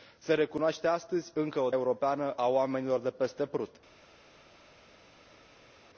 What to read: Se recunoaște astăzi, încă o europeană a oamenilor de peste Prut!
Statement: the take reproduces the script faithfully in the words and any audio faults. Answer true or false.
true